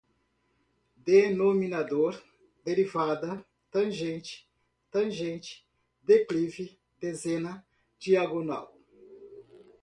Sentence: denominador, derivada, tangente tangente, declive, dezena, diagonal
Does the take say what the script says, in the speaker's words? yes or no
yes